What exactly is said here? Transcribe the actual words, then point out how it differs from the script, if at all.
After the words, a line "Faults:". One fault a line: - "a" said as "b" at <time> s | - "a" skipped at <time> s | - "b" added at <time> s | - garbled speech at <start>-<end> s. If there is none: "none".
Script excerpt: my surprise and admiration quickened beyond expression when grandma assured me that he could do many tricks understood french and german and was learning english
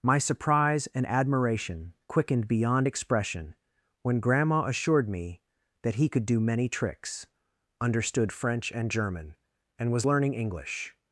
my surprise and admiration quickened beyond expression when grandma assured me that he could do many tricks understood french and german and was learning english
Faults:
none